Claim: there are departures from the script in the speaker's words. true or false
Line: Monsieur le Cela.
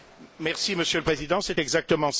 true